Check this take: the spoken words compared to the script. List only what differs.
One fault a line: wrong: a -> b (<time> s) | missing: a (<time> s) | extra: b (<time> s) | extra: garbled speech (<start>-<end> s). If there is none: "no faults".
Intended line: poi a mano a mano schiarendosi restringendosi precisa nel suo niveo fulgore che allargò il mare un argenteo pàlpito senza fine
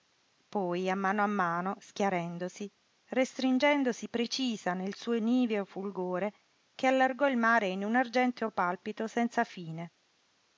extra: in (7.7 s)